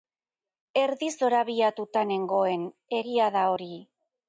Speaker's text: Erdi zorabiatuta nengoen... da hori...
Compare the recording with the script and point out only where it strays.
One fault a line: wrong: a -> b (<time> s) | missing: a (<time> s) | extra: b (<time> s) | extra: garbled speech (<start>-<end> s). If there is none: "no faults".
extra: egia (3.0 s)